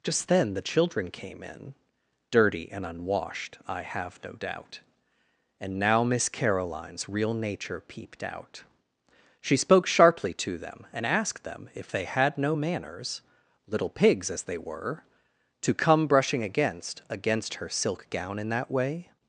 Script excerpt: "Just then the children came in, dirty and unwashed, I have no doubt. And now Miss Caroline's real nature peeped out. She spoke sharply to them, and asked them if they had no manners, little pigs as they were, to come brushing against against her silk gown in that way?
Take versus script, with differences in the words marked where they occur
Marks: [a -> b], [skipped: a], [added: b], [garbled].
"Just then the children came in, dirty and unwashed, I have no doubt. And now Miss Caroline's real nature peeped out. She spoke sharply to them, and asked them if they had no manners, little pigs as they were, to come brushing against against her silk gown in that way?